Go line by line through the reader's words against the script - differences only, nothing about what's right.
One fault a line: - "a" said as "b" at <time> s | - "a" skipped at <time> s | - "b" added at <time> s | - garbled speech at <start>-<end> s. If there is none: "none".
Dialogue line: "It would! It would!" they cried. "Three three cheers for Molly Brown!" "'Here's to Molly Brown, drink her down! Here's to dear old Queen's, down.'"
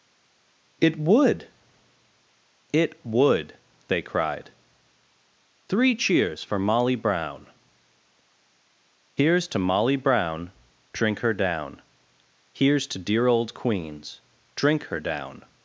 - "three" skipped at 5.9 s
- "drink her" added at 14.5 s